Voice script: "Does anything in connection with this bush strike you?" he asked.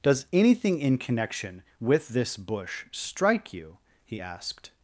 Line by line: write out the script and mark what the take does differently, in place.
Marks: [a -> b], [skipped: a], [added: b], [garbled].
"Does anything in connection with this bush strike you?" he asked.